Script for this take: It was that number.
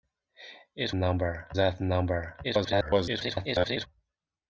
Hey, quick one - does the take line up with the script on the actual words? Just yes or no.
no